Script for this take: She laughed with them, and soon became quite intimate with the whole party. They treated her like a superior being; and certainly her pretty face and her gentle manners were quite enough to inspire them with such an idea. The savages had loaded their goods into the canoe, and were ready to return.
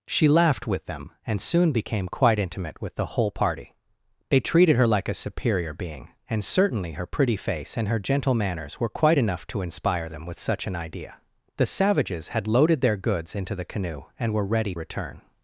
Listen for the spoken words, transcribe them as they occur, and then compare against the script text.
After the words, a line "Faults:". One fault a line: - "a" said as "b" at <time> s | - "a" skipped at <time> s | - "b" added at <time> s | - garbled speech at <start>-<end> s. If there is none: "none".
She laughed with them, and soon became quite intimate with the whole party. They treated her like a superior being; and certainly her pretty face and her gentle manners were quite enough to inspire them with such an idea. The savages had loaded their goods into the canoe, and were ready return.
Faults:
- "to" skipped at 14.7 s